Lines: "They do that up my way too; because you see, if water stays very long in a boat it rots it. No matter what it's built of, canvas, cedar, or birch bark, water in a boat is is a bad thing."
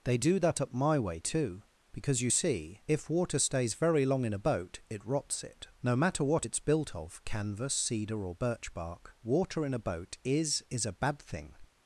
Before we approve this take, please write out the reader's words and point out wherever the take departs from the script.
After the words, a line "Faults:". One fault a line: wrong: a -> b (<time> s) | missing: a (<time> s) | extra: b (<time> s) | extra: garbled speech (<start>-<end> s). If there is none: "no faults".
"They do that up my way too; because you see, if water stays very long in a boat it rots it. No matter what it's built of, canvas, cedar, or birch bark, water in a boat is is a bad thing."
Faults:
no faults